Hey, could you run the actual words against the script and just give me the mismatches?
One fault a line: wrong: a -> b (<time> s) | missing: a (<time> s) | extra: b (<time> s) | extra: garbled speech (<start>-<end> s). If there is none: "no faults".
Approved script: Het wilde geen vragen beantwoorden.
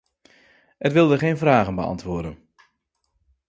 no faults